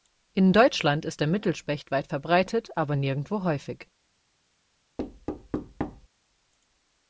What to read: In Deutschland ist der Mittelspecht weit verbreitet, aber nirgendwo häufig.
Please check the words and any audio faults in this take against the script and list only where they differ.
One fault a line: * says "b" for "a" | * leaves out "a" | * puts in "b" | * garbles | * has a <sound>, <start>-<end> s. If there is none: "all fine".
* has a thud, 5.0-6.1 s